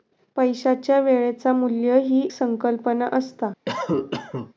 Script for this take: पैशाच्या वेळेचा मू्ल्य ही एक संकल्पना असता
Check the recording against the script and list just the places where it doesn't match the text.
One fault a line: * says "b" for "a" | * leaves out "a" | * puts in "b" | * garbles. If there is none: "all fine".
* leaves out "एक"